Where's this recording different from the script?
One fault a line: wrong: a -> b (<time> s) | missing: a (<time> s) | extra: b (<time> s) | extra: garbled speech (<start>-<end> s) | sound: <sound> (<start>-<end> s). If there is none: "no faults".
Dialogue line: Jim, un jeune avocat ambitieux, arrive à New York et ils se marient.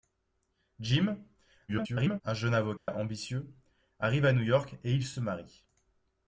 extra: garbled speech (1.7-2.2 s)
sound: dropout (2.8-2.9 s)
extra: se (5.1 s)